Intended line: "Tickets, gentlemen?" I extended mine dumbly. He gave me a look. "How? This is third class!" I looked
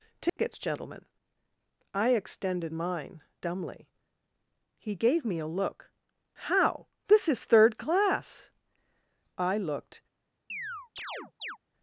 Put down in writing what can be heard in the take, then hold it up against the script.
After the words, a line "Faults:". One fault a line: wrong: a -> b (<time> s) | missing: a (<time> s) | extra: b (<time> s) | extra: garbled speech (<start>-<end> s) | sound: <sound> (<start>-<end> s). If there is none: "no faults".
"Tickets, gentlemen?" I extended mine dumbly. He gave me a look. "How? This is third class!" I looked
Faults:
sound: dropout (0.3-0.4 s)
sound: chirp (10.5-11.6 s)